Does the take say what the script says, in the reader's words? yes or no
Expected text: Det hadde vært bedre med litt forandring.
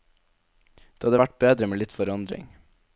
yes